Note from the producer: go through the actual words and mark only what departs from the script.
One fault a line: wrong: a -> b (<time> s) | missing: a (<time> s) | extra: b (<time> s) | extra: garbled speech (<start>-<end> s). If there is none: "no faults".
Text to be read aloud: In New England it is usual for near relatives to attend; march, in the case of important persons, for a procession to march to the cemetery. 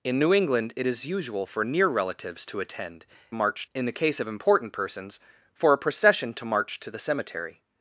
no faults